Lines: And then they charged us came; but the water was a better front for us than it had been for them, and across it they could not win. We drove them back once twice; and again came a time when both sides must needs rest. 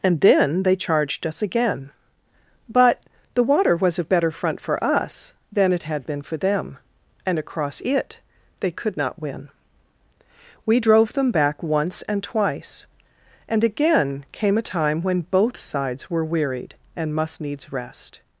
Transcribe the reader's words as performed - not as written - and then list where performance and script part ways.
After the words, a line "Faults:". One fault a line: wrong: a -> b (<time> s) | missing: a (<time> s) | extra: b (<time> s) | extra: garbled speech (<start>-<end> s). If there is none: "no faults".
And then they charged us again; but the water was a better front for us than it had been for them, and across it they could not win. We drove them back once and twice; and again came a time when both sides were wearied and must needs rest.
Faults:
wrong: came -> again (1.4 s)
extra: and (12.0 s)
extra: were wearied and (16.1 s)